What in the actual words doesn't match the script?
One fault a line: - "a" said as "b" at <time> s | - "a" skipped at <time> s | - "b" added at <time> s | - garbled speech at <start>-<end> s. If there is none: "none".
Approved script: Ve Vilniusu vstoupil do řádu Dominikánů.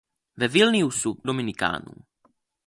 - "vstoupil do řádu" skipped at 1.2 s